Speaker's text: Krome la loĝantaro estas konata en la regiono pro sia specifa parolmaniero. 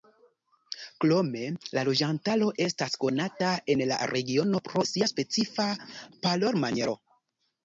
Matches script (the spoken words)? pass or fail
pass